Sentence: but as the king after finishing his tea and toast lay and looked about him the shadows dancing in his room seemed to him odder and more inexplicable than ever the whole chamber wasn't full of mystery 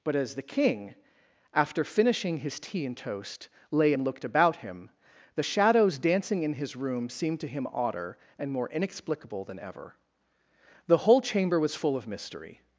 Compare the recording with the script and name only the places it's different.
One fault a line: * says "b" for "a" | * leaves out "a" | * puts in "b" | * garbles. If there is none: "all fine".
* says "was" for "wasn't"